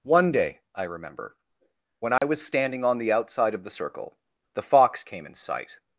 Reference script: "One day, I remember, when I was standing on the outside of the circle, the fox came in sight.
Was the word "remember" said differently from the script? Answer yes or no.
no